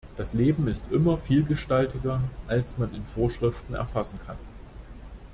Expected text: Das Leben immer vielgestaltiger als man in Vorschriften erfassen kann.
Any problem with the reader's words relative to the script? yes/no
yes